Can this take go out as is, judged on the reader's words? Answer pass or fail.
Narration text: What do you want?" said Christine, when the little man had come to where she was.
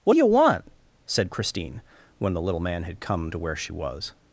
pass